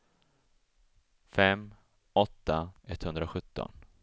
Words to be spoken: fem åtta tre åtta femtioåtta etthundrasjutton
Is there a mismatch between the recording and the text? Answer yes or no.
yes